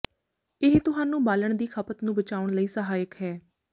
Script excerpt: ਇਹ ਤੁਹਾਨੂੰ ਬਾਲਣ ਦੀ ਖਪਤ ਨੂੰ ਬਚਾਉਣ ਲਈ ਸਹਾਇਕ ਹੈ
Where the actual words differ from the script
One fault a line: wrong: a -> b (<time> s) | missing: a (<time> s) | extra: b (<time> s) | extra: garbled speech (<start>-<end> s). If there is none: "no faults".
no faults